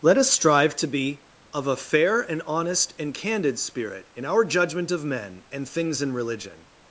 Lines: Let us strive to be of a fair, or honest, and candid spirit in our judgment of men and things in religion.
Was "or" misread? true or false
true